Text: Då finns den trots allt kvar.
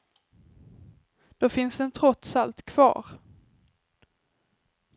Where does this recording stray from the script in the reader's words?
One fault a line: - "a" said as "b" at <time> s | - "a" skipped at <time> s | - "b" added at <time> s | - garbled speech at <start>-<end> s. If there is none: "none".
none